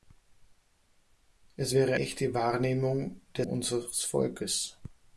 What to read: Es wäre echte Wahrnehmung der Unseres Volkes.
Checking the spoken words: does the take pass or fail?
pass